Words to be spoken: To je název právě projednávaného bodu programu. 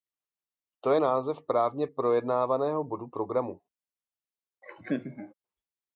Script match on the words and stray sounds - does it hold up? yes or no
no